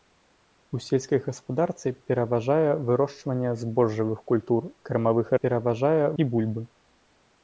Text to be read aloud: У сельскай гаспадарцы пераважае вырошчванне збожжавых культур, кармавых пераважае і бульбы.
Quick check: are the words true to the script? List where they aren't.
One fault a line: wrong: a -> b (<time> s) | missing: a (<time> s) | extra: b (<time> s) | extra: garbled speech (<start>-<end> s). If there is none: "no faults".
no faults